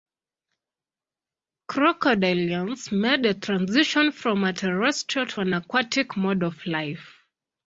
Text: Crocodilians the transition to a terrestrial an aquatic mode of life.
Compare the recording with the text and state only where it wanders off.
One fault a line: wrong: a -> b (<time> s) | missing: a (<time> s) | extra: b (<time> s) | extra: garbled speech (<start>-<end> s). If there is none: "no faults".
extra: made (2.9 s)
wrong: to -> from (4.1 s)
extra: to (5.3 s)